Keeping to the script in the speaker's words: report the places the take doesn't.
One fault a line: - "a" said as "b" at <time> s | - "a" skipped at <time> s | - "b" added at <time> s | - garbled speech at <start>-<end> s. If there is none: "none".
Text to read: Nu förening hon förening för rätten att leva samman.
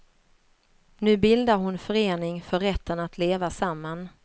- "förening" said as "bildar" at 1.2 s